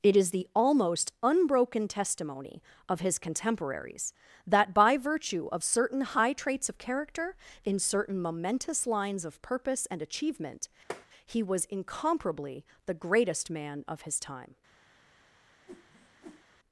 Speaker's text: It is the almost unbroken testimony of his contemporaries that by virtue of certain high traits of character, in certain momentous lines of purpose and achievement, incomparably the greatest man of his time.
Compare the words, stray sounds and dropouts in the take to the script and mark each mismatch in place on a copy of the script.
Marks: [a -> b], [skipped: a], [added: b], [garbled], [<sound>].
It is the almost unbroken testimony of his contemporaries that by virtue of certain high traits of character, in certain momentous lines of purpose and achievement, [tap] [added: he was] incomparably the greatest man of his time. [whoosh]